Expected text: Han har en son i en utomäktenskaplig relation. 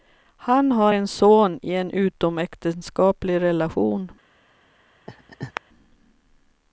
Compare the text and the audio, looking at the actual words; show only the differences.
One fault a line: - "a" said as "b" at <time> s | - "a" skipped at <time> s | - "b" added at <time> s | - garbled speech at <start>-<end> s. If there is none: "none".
none